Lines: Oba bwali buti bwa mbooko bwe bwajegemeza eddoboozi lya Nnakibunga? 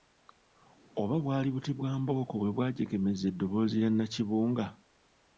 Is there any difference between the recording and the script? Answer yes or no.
no